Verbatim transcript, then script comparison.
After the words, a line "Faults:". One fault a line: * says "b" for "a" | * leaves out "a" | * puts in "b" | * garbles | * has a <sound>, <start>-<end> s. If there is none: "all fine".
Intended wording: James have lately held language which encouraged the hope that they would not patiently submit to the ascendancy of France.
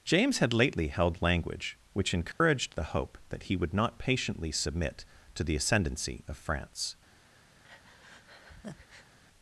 James had lately held language which encouraged the hope that he would not patiently submit to the ascendancy of France.
Faults:
* says "had" for "have"
* has a dropout, 2.3-2.4 s
* says "he" for "they"
* has a breath, 7.6-9.2 s